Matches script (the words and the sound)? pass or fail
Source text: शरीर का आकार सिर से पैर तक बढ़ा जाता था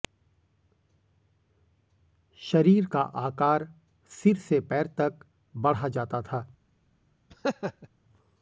fail